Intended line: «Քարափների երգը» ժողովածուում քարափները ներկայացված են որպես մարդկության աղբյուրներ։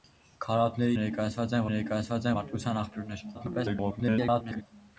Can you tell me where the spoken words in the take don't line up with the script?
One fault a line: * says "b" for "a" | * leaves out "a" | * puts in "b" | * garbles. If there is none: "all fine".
* leaves out "երգը ժողովածուում քարափները"
* says "ներկայացված" for "որպես"
* garbles